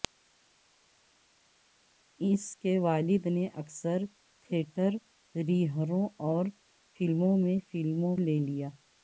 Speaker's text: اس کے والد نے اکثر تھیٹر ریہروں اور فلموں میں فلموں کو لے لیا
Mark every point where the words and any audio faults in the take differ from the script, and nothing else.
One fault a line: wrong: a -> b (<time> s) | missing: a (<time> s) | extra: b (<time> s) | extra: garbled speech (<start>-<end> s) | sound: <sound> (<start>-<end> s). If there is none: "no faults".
missing: کو (8.2 s)